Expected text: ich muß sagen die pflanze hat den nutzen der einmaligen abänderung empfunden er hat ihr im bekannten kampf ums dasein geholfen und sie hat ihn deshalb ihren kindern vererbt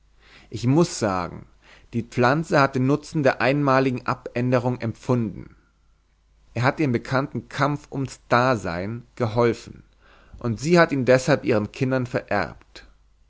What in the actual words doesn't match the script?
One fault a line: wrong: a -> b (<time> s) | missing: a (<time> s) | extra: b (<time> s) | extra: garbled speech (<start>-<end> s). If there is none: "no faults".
no faults